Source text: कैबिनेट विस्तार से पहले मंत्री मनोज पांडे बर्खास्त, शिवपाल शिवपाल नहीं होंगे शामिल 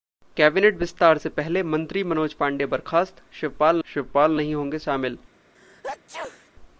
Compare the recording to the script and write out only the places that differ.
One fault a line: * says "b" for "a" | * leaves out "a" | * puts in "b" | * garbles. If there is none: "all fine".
all fine